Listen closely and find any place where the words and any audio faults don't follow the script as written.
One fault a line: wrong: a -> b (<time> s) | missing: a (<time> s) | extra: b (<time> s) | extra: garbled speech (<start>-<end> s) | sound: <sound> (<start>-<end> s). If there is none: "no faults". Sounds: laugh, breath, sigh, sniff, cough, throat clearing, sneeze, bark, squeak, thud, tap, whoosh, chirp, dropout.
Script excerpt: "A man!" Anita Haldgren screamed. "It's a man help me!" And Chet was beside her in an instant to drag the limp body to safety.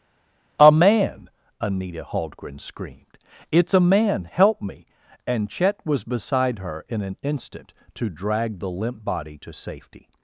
no faults